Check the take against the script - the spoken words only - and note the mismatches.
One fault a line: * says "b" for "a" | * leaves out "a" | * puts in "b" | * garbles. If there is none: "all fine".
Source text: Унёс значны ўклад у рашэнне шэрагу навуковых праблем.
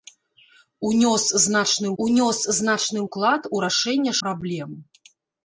* puts in "унёс значны"
* leaves out "шэрагу навуковых"